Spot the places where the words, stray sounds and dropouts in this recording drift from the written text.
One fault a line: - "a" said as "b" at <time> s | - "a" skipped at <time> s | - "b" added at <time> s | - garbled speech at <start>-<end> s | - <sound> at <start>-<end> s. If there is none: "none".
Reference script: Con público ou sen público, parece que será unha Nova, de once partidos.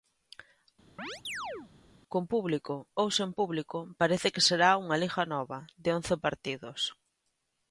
- chirp at 1.0-1.7 s
- "Liga" added at 5.0 s